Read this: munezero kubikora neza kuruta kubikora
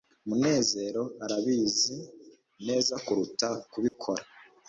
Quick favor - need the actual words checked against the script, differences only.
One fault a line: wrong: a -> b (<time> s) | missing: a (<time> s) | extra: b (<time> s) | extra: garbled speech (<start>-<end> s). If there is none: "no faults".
wrong: kubikora -> arabizi (1.2 s)